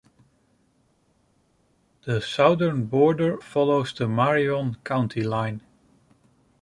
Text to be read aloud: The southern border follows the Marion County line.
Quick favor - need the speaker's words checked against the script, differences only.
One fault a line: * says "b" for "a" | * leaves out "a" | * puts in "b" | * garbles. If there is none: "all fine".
all fine